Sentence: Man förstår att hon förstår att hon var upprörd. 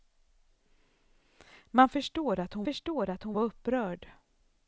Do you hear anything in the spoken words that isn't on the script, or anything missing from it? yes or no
no